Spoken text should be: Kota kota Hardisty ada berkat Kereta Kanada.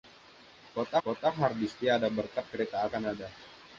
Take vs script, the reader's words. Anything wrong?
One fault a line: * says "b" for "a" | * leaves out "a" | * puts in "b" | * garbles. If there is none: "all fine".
all fine